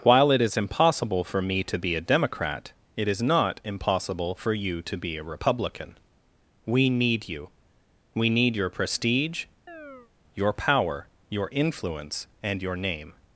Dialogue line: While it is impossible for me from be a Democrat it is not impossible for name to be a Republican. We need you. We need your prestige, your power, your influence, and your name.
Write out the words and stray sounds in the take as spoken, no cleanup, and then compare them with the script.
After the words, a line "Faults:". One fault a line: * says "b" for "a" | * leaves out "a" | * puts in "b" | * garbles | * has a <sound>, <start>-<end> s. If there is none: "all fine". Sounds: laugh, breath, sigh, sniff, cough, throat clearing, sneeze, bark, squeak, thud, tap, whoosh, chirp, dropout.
While it is impossible for me to be a Democrat it is not impossible for you to be a Republican. We need you. We need your prestige, your power, your influence, and your name.
Faults:
* says "to" for "from"
* says "you" for "name"
* has a chirp, 9.7-10.1 s